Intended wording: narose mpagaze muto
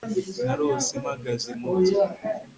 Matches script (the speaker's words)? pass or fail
pass